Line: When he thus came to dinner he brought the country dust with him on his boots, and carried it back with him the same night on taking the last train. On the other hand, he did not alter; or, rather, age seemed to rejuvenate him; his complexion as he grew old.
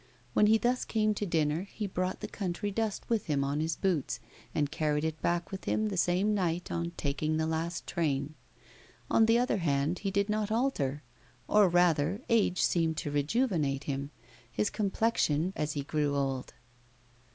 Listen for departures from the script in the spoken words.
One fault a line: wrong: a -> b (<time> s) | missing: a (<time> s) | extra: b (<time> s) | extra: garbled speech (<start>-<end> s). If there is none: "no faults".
no faults